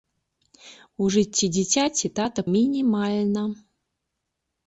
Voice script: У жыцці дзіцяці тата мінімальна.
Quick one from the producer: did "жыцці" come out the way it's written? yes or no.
yes